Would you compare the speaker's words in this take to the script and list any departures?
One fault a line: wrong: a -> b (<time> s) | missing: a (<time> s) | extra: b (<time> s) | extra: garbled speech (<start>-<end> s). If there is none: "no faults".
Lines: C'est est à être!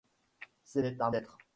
no faults